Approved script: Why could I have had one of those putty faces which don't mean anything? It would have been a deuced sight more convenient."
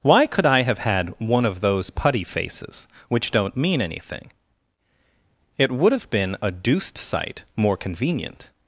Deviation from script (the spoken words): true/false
false